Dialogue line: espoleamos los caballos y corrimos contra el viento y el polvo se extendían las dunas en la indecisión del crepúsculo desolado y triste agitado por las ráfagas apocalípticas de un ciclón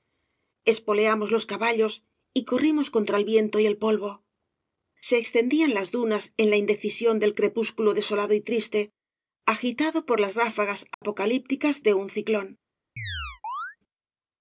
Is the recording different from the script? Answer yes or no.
no